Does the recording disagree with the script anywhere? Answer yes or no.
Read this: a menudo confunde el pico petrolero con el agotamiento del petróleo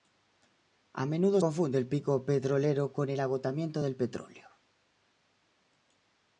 no